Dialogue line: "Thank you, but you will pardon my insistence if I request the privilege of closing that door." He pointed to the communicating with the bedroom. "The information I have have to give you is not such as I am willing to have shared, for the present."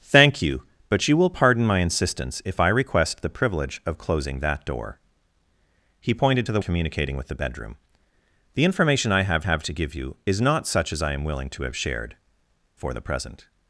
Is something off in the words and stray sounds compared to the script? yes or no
no